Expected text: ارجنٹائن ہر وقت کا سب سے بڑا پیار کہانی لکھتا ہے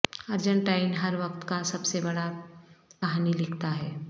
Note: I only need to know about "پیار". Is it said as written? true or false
false